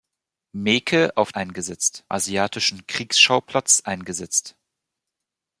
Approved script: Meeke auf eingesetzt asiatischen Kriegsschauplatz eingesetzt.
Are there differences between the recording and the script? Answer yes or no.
no